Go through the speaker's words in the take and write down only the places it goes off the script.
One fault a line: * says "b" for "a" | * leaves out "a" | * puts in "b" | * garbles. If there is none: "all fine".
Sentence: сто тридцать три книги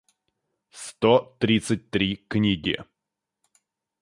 all fine